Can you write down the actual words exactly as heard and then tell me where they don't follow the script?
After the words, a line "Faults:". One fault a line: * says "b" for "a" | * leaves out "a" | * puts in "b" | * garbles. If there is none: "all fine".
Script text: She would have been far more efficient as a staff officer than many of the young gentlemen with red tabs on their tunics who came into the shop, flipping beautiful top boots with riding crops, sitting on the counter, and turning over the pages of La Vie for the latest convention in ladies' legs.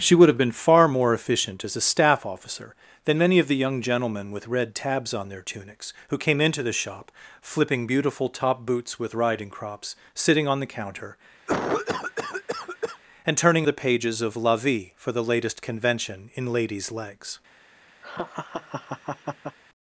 She would have been far more efficient as a staff officer than many of the young gentlemen with red tabs on their tunics who came into the shop, flipping beautiful top boots with riding crops, sitting on the counter, and turning the pages of La Vie for the latest convention in ladies' legs.
Faults:
* leaves out "over"